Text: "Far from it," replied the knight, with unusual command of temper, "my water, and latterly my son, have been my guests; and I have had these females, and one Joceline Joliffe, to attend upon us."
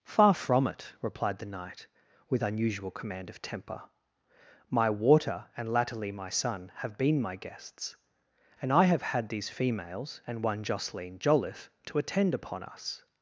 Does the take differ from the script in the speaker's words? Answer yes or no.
no